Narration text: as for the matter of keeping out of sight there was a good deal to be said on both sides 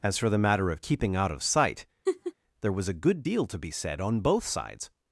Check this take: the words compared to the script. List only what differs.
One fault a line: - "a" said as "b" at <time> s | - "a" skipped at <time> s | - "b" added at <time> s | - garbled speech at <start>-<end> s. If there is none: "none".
none